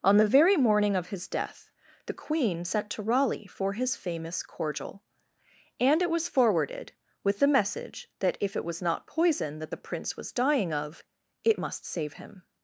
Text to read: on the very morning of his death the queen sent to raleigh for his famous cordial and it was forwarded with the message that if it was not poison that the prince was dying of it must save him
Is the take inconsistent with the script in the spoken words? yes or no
no